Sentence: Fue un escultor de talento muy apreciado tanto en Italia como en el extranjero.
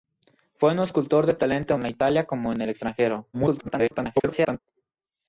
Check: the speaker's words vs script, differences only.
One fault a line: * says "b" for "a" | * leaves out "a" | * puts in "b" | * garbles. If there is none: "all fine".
* leaves out "muy apreciado tanto"
* garbles